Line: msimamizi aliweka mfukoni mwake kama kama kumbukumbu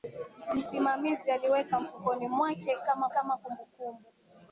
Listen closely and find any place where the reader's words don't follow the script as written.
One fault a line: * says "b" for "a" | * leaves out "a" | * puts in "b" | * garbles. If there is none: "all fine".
all fine